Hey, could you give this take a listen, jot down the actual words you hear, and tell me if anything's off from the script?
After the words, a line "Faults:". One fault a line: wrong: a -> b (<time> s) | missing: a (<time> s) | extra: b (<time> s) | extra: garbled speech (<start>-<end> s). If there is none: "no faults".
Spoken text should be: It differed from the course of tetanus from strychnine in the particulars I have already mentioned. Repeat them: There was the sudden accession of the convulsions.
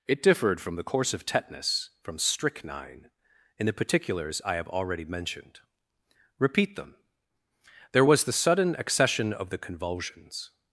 It differed from the course of tetanus from strychnine in the particulars I have already mentioned. Repeat them: There was the sudden accession of the convulsions.
Faults:
no faults